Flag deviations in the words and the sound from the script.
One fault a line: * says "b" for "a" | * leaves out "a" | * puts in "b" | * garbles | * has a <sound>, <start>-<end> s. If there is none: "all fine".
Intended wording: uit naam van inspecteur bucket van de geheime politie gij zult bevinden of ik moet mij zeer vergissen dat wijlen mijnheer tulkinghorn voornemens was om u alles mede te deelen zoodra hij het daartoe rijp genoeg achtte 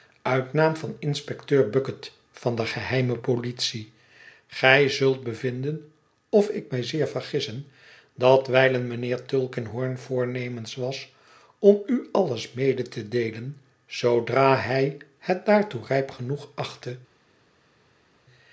* leaves out "moet"